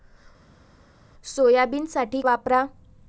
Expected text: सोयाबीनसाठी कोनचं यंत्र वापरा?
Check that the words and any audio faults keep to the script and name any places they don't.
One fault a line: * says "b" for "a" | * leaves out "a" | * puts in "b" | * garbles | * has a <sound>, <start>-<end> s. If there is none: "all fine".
* leaves out "कोनचं यंत्र"